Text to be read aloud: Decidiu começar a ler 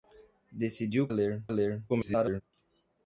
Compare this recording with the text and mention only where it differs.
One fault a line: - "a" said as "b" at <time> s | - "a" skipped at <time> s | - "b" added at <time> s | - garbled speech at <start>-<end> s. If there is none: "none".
- "começar" said as "ler" at 1.1 s
- garbled speech at 1.9-2.4 s